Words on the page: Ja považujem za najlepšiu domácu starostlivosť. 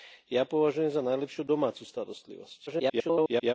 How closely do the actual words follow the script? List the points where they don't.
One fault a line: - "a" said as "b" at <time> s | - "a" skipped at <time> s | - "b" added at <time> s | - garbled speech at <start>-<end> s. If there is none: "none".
- garbled speech at 2.7-3.5 s